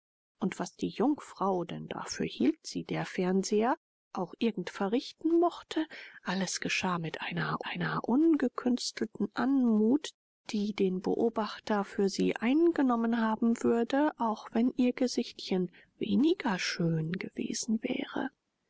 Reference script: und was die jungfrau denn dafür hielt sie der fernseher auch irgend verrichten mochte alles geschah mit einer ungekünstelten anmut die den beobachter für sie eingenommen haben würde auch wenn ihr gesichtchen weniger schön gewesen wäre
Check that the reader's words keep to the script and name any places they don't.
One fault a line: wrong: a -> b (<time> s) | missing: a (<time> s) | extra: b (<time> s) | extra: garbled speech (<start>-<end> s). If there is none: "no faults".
extra: einer (7.7 s)